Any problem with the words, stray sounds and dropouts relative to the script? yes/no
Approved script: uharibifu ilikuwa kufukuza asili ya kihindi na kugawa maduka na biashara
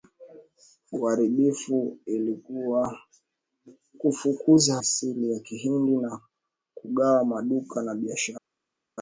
no